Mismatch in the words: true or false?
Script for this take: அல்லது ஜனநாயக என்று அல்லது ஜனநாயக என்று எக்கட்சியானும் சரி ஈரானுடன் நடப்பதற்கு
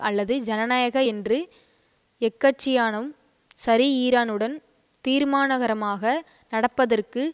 true